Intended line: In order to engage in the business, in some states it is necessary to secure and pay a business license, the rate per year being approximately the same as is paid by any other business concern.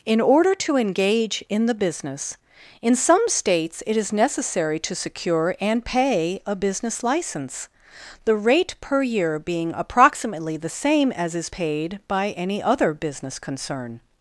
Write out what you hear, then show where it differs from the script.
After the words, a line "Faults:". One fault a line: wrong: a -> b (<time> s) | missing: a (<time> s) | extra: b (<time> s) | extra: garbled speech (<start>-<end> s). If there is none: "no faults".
In order to engage in the business, in some states it is necessary to secure and pay a business license, the rate per year being approximately the same as is paid by any other business concern.
Faults:
no faults